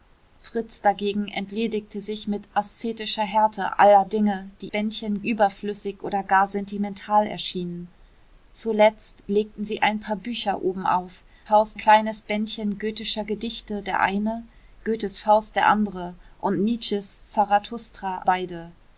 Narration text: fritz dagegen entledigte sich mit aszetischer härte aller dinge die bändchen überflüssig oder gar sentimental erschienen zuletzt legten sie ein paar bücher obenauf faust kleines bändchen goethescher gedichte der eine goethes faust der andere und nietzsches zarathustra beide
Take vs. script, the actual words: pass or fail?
pass